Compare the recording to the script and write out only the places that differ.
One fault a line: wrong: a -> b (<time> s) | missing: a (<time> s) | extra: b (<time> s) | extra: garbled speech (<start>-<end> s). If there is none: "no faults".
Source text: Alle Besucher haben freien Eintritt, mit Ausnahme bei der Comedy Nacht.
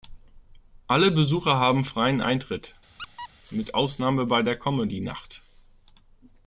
no faults